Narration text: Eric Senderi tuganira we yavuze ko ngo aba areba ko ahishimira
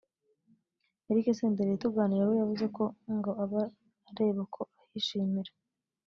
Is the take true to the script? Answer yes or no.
yes